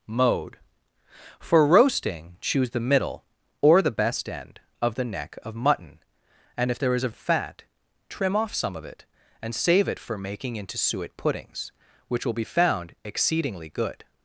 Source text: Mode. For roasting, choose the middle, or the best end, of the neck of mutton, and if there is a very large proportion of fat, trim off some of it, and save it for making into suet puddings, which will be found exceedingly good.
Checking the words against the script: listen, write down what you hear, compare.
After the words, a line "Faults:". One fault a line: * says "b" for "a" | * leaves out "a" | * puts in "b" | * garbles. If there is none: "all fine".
Mode. For roasting, choose the middle, or the best end, of the neck of mutton, and if there is a of fat, trim off some of it, and save it for making into suet puddings, which will be found exceedingly good.
Faults:
* leaves out "very large proportion"